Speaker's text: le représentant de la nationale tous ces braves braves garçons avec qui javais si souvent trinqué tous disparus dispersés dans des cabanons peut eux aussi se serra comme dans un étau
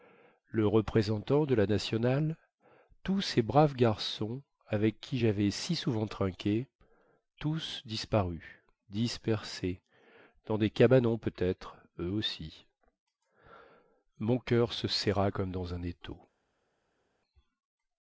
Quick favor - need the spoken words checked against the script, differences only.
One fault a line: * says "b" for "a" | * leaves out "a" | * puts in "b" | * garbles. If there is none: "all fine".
* leaves out "braves"
* puts in "être"
* puts in "mon coeur"